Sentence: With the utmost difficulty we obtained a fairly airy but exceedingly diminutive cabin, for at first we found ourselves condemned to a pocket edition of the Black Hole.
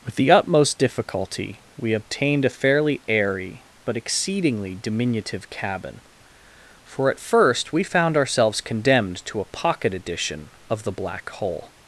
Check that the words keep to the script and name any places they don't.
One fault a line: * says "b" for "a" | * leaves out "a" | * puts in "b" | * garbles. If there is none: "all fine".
all fine